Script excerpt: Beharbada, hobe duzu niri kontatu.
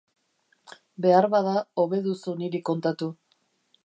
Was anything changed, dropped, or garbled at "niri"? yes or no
no